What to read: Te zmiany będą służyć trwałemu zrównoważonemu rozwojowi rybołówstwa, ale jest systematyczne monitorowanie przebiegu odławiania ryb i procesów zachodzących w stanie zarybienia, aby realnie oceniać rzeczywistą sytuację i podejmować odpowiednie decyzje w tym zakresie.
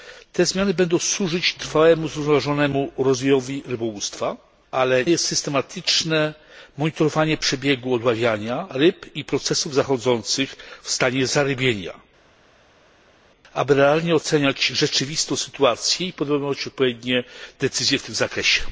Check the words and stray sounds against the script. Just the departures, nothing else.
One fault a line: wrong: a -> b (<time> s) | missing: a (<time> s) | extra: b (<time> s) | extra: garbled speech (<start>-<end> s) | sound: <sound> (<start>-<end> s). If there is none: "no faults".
no faults